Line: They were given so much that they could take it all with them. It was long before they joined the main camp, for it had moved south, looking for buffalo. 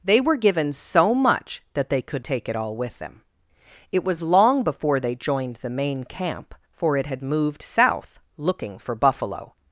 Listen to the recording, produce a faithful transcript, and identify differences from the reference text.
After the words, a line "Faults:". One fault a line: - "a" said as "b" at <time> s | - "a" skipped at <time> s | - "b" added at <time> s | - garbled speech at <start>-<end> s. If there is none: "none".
They were given so much that they could take it all with them. It was long before they joined the main camp, for it had moved south, looking for buffalo.
Faults:
none